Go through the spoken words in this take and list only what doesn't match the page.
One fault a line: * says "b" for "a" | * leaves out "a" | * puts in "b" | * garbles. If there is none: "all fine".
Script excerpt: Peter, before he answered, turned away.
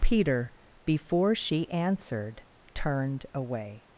* says "she" for "he"